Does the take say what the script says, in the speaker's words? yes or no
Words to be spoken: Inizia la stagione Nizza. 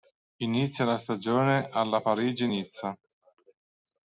no